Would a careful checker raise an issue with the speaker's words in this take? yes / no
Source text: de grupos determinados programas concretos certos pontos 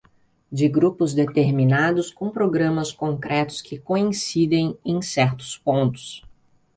yes